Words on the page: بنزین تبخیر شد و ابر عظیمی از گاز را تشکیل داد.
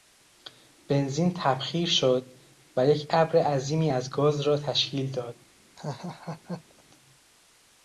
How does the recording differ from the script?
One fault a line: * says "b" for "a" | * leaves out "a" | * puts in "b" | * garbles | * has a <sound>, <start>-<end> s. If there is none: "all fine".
* puts in "یک"
* has a laugh, 5.8-6.8 s